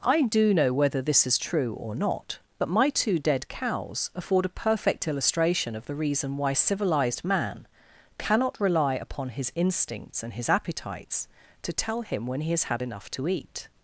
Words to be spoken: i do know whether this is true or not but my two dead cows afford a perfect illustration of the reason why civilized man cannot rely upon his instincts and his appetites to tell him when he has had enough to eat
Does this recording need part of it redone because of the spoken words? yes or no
no